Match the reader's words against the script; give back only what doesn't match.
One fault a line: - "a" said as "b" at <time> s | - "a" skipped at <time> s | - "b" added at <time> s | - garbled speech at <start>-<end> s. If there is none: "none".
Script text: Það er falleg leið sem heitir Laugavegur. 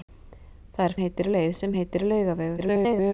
- "falleg" said as "heitir" at 1.0 s
- garbled speech at 2.6-3.1 s